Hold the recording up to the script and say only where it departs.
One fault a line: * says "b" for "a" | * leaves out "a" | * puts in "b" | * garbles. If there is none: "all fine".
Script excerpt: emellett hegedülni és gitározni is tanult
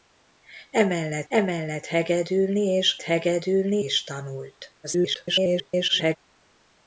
* puts in "emellett"
* says "hegedülni" for "gitározni"
* garbles